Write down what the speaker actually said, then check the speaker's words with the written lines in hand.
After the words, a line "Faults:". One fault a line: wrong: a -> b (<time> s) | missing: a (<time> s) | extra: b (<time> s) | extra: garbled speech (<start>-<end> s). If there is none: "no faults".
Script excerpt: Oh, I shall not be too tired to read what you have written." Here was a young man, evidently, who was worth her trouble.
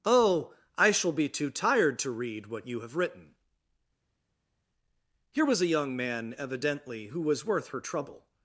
Oh, I shall be too tired to read what you have written." Here was a young man, evidently, who was worth her trouble.
Faults:
missing: not (1.1 s)